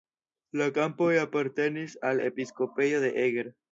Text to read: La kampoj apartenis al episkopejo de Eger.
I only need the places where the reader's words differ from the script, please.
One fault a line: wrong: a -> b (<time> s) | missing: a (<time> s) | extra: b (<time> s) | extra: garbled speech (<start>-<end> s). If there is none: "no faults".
no faults